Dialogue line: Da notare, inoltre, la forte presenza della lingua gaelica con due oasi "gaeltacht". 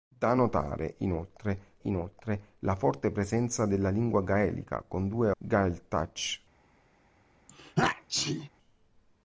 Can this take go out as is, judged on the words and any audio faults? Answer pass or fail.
fail